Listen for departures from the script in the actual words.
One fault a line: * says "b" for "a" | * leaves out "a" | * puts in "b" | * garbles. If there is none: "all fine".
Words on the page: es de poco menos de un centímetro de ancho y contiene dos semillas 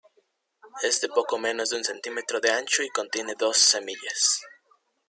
all fine